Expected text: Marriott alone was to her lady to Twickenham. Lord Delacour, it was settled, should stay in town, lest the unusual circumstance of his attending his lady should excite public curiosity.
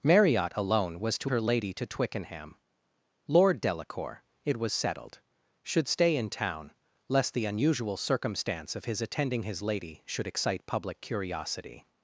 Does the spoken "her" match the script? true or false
true